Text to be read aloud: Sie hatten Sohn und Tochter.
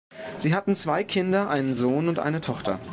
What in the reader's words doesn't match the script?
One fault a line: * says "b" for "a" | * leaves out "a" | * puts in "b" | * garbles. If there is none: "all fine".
* puts in "zwei Kinder einen"
* puts in "eine"